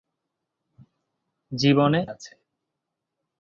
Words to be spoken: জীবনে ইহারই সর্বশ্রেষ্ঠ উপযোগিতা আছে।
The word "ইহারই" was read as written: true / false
false